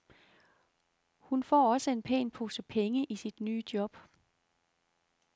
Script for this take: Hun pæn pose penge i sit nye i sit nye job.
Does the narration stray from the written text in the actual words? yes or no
yes